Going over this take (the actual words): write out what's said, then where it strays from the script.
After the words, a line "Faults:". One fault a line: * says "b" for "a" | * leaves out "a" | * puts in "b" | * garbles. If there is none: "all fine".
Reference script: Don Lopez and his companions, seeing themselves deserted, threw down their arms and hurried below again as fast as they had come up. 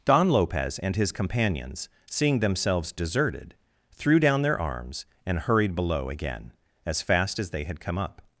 Don Lopez and his companions, seeing themselves deserted, threw down their arms and hurried below again as fast as they had come up.
Faults:
all fine